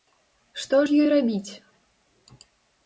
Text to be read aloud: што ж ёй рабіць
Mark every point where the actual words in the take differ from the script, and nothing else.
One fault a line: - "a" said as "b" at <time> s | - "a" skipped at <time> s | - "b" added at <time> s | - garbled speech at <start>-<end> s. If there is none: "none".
none